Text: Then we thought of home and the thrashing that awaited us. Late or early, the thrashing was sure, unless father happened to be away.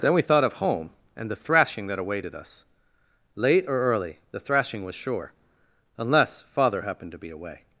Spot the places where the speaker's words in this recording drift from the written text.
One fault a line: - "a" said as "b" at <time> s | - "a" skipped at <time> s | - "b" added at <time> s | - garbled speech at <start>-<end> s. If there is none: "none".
none